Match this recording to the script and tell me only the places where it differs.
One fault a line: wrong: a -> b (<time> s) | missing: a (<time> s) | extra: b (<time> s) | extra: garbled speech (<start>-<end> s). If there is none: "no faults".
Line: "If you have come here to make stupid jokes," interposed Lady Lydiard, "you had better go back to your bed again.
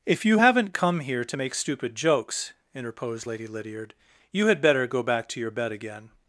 wrong: have -> haven't (0.4 s)